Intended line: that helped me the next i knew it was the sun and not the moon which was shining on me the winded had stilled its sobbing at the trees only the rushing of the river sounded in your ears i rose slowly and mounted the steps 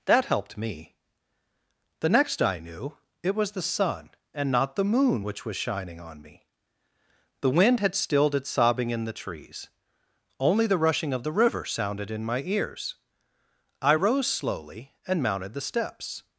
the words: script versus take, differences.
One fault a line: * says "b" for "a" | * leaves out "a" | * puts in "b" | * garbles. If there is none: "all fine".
* says "wind" for "winded"
* says "in" for "at"
* says "my" for "your"